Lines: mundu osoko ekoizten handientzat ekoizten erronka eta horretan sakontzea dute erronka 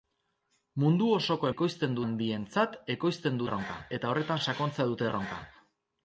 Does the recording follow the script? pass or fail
pass